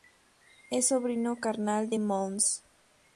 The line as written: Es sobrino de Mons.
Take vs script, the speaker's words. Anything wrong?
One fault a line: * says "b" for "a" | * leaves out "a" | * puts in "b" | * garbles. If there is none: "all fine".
* puts in "carnal"